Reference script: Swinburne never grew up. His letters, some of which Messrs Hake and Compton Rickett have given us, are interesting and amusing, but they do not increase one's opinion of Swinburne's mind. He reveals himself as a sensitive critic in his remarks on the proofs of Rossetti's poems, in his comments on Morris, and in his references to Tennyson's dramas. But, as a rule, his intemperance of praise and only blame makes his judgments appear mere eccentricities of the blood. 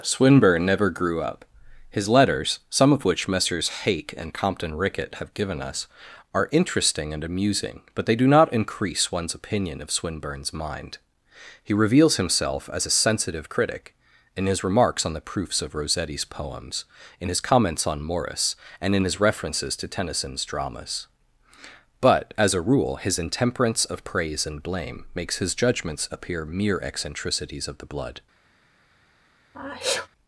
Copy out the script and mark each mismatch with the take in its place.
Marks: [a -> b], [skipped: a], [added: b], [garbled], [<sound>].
Swinburne never grew up. His letters, some of which Messrs Hake and Compton Rickett have given us, are interesting and amusing, but they do not increase one's opinion of Swinburne's mind. He reveals himself as a sensitive critic in his remarks on the proofs of Rossetti's poems, in his comments on Morris, and in his references to Tennyson's dramas. But, as a rule, his intemperance of praise and [skipped: only] blame makes his judgments appear mere eccentricities of the blood. [sneeze]